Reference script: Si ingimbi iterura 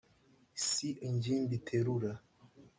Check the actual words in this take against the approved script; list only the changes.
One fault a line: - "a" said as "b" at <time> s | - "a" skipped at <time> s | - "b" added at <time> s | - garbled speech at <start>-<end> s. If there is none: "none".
none